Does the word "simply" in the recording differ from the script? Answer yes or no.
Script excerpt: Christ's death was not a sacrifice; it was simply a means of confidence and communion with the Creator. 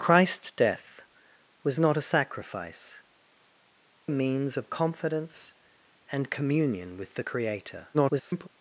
yes